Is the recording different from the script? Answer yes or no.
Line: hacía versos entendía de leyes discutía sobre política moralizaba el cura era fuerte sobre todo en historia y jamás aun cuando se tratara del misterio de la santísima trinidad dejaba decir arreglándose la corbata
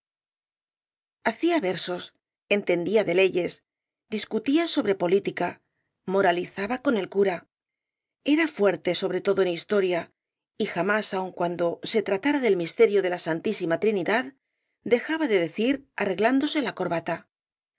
yes